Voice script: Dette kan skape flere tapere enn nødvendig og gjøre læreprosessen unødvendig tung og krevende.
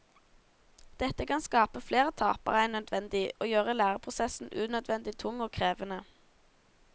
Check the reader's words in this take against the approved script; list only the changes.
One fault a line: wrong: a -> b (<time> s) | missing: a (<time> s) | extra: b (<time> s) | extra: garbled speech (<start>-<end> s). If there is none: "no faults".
no faults